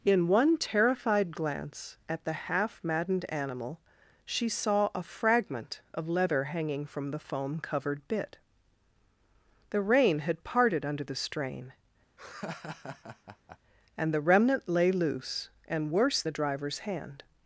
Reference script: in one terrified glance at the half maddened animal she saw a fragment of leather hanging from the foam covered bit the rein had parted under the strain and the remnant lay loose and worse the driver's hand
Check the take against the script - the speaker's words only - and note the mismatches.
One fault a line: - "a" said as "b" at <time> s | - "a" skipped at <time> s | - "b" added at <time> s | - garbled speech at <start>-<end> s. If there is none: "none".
none